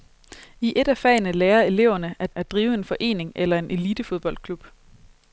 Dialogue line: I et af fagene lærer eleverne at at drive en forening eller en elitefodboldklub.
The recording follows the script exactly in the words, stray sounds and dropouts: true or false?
true